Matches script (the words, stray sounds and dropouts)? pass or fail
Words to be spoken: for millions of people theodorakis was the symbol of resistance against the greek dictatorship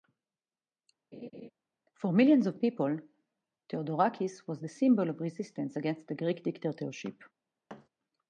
fail